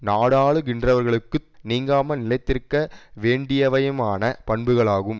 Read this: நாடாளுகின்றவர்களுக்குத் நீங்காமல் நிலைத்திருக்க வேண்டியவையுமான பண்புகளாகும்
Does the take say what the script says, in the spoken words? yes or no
yes